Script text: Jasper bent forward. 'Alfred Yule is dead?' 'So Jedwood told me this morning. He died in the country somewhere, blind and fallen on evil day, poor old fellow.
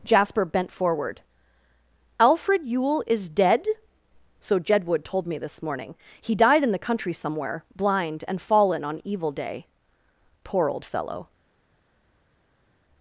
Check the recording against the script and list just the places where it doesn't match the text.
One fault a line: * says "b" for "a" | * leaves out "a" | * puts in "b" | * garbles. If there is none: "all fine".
all fine